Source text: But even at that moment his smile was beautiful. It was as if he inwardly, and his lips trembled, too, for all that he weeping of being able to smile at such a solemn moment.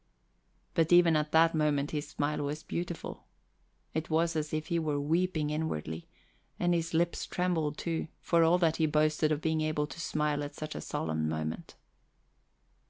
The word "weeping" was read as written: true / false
false